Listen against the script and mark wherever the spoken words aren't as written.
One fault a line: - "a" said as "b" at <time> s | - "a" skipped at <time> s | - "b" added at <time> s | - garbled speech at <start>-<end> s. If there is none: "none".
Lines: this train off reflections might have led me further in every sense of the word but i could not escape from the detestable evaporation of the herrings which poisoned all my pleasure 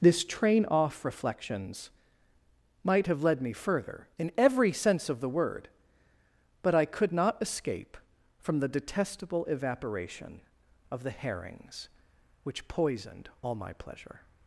none